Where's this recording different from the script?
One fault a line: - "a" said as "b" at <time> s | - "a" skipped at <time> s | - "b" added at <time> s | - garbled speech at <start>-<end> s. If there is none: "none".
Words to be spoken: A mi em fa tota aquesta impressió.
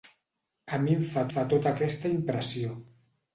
- "fa" added at 1.3 s